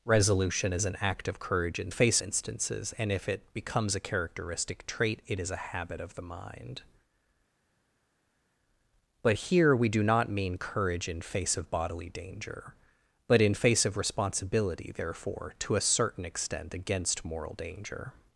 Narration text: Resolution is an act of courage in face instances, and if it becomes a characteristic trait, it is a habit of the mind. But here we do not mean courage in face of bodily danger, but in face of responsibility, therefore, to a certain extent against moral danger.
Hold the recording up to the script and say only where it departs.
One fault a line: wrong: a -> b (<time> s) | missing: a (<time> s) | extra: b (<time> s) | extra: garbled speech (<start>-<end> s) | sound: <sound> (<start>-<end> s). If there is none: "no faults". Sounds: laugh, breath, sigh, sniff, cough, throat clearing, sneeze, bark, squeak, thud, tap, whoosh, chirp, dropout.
no faults